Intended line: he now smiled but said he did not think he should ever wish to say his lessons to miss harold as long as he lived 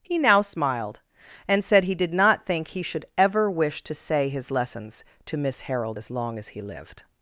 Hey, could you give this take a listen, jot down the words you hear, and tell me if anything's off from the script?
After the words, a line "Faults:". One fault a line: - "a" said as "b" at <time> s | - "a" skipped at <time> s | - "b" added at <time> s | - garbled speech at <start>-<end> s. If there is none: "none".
he now smiled and said he did not think he should ever wish to say his lessons to miss harold as long as he lived
Faults:
- "but" said as "and" at 1.5 s